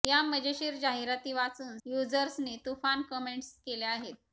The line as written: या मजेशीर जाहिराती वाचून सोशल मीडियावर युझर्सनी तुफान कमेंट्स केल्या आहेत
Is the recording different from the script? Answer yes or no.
yes